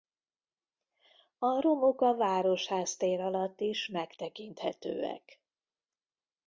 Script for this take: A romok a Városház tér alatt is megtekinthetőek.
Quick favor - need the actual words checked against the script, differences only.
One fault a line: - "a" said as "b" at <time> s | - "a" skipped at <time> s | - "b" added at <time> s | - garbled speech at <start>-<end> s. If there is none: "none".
none